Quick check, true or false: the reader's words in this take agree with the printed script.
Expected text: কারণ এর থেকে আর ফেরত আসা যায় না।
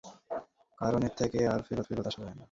false